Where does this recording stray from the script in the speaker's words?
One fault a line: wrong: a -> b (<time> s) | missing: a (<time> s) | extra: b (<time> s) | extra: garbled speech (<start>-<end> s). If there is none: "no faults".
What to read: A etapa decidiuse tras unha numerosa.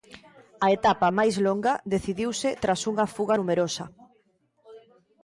extra: máis longa (1.2 s)
extra: fuga (3.2 s)